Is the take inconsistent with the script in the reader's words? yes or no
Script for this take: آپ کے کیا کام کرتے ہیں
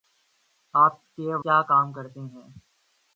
no